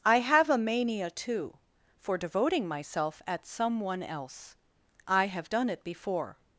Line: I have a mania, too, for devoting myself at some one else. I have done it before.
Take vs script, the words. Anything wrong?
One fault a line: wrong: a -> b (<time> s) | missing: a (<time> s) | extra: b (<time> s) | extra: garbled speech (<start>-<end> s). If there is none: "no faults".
no faults